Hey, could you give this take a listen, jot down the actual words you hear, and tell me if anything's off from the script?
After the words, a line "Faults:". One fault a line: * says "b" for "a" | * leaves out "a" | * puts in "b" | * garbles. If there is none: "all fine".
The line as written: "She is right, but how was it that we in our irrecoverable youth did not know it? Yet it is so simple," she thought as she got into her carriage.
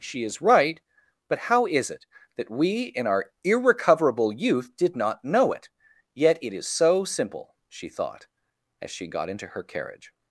"She is right, but how is it that we in our irrecoverable youth did not know it? Yet it is so simple," she thought as she got into her carriage.
Faults:
* says "is" for "was"